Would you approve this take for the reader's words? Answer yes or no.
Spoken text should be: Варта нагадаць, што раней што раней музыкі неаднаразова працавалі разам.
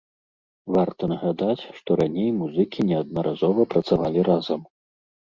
no